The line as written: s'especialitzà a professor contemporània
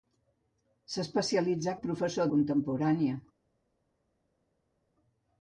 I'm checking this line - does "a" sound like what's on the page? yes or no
yes